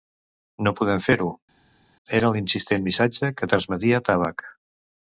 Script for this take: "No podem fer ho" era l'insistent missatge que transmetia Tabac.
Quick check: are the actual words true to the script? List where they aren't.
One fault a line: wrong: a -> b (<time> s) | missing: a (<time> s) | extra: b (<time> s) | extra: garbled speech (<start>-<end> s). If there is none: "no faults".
no faults